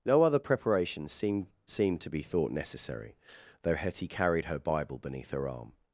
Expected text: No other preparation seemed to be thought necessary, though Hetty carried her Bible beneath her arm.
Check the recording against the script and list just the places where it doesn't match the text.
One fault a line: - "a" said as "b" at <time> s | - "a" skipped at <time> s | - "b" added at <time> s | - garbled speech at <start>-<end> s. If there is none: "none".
- "seemed" added at 1.7 s